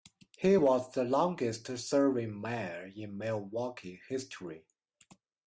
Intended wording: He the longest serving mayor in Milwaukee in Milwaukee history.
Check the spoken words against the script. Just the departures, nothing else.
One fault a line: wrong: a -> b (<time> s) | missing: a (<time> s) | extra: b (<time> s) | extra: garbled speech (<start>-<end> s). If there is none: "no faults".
extra: was (0.5 s)
missing: in Milwaukee (4.0 s)